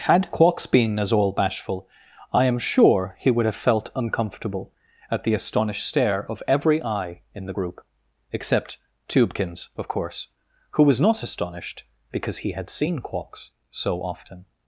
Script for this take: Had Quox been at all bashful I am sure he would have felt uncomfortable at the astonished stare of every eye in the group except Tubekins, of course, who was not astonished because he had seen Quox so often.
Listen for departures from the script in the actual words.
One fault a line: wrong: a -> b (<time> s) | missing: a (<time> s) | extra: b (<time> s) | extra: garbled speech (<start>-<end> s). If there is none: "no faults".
wrong: at -> as (1.0 s)